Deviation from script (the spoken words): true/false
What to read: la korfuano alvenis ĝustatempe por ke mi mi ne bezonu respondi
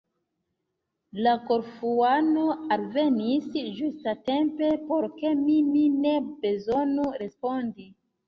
false